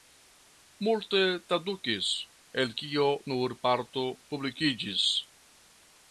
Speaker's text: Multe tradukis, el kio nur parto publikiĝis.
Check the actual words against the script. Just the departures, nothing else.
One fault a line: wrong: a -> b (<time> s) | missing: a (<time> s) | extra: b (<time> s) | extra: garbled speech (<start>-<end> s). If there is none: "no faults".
no faults